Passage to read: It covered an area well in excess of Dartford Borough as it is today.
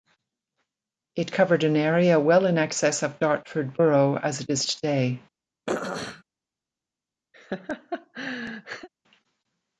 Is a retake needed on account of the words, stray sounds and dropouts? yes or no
yes